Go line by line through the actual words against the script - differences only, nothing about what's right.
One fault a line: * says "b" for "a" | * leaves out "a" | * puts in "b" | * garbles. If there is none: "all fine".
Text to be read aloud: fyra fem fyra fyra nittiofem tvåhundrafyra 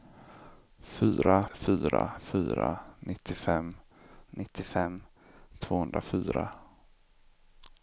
* says "fyra" for "fem"
* says "nittiofem" for "fyra"